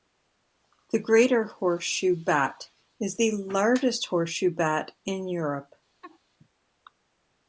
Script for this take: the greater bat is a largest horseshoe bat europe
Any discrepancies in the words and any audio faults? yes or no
yes